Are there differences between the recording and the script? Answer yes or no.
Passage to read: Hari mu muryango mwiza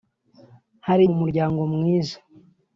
no